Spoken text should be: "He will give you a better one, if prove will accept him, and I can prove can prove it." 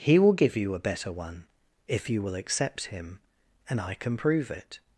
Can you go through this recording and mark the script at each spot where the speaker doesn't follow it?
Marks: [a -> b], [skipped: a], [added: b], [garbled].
"He will give you a better one, if [prove -> you] will accept him, and I can prove [skipped: can prove] it."